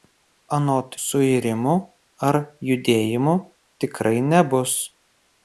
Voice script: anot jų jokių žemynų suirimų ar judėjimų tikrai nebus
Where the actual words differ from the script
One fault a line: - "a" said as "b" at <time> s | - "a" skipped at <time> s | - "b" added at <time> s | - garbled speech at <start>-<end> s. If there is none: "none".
- "jų jokių žemynų" skipped at 0.9 s